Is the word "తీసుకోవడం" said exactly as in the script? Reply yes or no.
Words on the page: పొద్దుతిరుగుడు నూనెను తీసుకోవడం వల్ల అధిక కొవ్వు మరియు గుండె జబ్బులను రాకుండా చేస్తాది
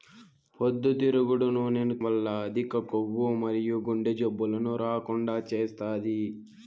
no